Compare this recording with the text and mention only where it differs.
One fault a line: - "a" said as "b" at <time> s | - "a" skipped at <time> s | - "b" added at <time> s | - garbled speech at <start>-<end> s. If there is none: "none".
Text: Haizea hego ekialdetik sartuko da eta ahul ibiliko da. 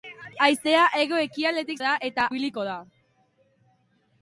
- "sartuko" skipped at 1.8 s
- "ahul" skipped at 2.3 s